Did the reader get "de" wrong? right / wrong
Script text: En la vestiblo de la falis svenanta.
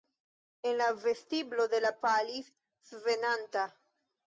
right